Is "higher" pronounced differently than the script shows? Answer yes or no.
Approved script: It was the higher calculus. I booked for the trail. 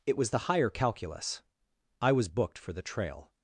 no